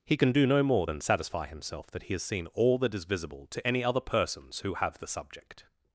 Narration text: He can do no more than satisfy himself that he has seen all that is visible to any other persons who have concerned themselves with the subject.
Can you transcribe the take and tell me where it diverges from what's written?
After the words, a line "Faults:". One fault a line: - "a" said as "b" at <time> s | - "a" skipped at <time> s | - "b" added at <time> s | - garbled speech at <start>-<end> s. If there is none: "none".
He can do no more than satisfy himself that he has seen all that is visible to any other persons who have the subject.
Faults:
- "concerned themselves with" skipped at 5.0 s